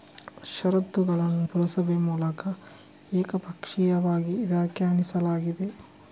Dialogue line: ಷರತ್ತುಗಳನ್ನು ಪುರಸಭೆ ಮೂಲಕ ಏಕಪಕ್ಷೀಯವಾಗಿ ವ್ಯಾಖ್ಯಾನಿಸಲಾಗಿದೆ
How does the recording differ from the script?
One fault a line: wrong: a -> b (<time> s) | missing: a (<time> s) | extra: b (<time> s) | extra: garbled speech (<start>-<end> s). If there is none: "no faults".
no faults